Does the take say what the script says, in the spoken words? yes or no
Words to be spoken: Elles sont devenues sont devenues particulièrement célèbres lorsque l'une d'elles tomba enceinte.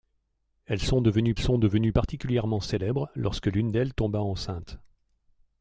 yes